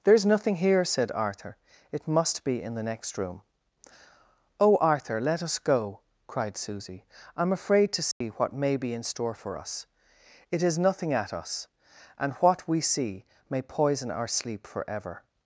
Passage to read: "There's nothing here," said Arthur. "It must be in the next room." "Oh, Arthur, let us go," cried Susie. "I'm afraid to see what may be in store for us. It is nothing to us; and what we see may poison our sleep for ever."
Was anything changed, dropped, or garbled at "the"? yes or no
no